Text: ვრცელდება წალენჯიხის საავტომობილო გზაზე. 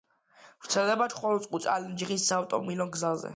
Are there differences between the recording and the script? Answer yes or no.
yes